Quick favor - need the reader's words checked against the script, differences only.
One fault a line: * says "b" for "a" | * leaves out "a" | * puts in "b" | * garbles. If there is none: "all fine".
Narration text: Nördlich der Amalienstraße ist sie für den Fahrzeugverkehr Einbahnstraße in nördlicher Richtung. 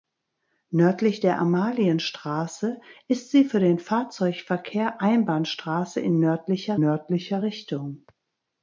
* puts in "nördlicher"